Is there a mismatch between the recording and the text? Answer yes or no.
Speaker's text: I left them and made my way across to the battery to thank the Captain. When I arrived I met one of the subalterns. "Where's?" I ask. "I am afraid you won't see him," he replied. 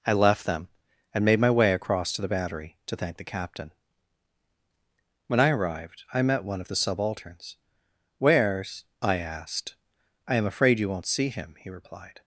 yes